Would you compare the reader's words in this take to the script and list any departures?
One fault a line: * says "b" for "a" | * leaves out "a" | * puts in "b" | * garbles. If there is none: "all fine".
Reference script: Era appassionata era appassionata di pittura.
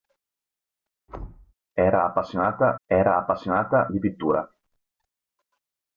all fine